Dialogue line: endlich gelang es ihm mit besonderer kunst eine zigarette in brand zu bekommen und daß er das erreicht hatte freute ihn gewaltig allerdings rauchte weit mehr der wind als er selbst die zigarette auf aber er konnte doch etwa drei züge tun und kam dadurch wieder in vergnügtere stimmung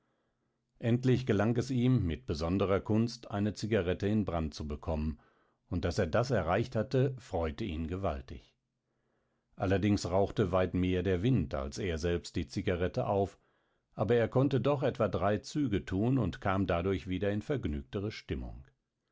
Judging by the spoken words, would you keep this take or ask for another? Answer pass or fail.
pass